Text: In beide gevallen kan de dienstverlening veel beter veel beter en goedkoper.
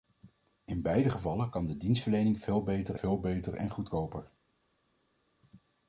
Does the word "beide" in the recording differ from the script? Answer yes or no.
no